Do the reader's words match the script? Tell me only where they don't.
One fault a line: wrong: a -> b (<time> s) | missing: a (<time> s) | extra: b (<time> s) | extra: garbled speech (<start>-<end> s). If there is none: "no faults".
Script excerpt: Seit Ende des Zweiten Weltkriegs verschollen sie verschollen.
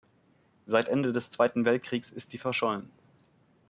wrong: verschollen -> ist (2.1 s)